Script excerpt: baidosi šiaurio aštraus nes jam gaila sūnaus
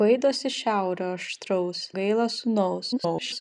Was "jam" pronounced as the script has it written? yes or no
no